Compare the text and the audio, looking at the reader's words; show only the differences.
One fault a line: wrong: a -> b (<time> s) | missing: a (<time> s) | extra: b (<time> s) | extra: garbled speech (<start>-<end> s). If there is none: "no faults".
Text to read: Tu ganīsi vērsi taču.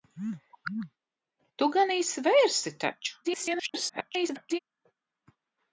extra: garbled speech (3.2-4.6 s)